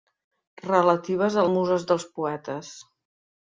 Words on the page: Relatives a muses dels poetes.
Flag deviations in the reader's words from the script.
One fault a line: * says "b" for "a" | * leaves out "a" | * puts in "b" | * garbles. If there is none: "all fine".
all fine